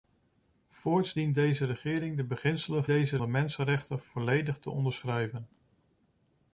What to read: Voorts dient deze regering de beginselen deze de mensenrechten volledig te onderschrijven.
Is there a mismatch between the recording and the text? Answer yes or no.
no